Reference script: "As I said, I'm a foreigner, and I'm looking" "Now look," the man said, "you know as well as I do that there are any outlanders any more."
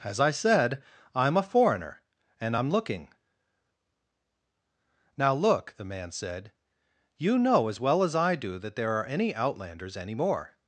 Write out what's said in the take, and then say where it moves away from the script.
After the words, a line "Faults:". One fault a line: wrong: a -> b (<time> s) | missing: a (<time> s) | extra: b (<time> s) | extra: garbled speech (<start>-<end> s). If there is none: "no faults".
"As I said, I'm a foreigner, and I'm looking" "Now look," the man said, "you know as well as I do that there are any outlanders any more."
Faults:
no faults